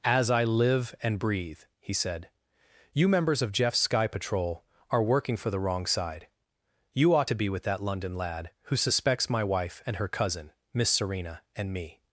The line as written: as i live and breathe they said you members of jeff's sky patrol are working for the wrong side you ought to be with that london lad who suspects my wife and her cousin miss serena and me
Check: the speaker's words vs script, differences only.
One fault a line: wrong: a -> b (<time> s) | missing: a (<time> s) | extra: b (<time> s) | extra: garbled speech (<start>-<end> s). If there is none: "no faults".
wrong: they -> he (1.8 s)